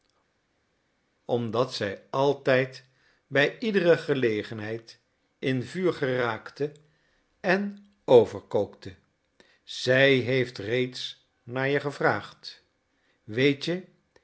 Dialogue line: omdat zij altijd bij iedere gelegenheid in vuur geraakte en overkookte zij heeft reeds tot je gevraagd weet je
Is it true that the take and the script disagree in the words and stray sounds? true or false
true